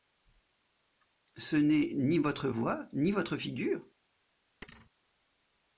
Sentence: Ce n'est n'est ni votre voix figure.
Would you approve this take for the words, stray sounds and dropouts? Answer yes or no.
no